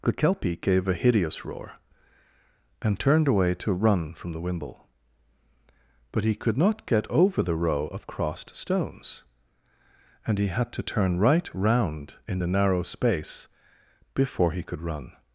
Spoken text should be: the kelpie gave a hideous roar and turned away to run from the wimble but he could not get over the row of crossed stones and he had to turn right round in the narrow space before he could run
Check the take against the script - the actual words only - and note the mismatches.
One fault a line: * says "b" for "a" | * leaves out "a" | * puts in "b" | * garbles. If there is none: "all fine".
all fine